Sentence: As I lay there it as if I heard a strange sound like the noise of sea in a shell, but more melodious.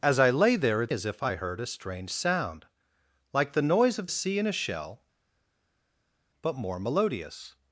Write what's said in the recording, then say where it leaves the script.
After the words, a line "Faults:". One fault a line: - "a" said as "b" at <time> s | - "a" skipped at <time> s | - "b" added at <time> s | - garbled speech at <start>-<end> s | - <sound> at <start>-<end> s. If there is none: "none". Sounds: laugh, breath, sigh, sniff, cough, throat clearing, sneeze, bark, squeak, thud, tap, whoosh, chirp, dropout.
As I lay there it as if I heard a strange sound like the noise of sea in a shell, but more melodious.
Faults:
none